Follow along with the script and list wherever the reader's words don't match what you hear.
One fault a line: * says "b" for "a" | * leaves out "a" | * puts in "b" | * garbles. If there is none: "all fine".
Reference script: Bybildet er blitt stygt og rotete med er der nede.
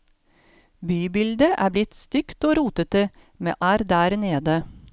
all fine